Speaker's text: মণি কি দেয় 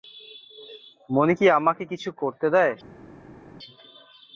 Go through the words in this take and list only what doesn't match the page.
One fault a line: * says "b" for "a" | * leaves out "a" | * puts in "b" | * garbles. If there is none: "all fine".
* puts in "আমাকে কিছু করতে"